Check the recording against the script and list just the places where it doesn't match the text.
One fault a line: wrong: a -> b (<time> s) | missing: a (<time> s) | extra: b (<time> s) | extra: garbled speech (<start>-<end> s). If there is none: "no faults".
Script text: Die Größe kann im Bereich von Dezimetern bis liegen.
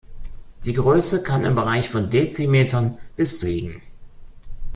no faults